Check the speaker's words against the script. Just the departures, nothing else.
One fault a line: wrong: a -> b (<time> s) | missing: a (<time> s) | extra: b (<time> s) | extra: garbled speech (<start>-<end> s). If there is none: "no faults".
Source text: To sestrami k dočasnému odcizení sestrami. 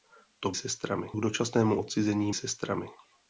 no faults